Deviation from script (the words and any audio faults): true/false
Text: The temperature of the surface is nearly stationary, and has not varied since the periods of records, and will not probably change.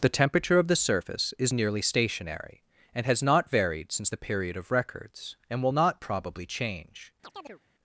true